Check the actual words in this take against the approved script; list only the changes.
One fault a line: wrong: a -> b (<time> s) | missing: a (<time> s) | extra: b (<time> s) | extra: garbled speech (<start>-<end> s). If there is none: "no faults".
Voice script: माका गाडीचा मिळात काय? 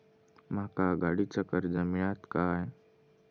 extra: कर्ज (1.4 s)